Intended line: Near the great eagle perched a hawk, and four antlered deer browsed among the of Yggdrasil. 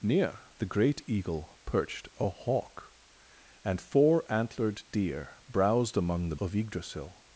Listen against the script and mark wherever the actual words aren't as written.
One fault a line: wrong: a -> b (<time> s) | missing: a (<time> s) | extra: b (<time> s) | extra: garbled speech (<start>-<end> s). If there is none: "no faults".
no faults